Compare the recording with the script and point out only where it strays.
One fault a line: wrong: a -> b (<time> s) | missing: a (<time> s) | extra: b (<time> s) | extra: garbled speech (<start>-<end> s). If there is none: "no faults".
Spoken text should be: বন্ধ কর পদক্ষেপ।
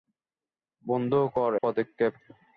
no faults